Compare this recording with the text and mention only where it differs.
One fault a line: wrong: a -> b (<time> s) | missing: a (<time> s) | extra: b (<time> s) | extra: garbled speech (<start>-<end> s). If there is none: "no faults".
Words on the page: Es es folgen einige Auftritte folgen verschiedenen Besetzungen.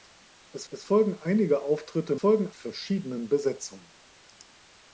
no faults